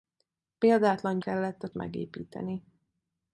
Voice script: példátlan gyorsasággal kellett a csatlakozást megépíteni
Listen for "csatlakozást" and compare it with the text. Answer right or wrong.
wrong